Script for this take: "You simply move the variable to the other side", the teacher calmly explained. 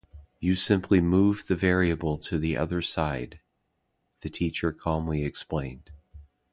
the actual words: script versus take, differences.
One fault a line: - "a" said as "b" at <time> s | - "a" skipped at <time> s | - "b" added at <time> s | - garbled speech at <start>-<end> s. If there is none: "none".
none